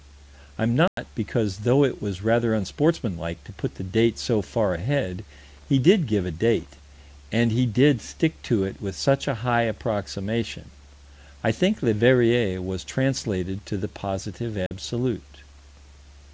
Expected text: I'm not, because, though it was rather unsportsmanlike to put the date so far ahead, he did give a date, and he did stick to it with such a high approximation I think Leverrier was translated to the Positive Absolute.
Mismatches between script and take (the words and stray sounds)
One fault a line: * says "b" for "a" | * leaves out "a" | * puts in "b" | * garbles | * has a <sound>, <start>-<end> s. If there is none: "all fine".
* has a dropout, 0.9-1.0 s
* has a dropout, 14.7-14.7 s